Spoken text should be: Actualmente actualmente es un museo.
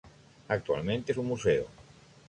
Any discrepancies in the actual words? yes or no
yes